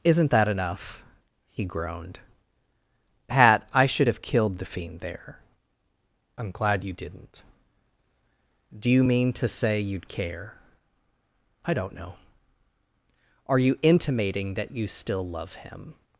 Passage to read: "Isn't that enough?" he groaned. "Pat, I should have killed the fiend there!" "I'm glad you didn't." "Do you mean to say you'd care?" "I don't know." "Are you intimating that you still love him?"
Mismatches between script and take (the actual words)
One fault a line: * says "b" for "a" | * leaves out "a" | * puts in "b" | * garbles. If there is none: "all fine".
all fine